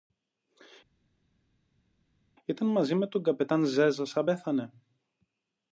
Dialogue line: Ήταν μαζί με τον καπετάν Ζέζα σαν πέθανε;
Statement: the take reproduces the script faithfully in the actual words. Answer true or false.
true